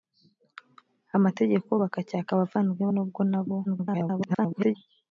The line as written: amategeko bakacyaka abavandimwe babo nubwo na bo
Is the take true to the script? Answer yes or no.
no